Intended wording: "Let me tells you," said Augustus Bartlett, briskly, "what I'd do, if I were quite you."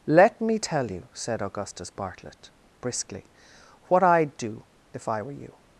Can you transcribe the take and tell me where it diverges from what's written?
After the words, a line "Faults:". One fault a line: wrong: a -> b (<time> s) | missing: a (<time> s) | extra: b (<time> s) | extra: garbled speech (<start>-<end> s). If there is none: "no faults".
"Let me tell you," said Augustus Bartlett, briskly, "what I'd do, if I were you."
Faults:
wrong: tells -> tell (0.6 s)
missing: quite (5.3 s)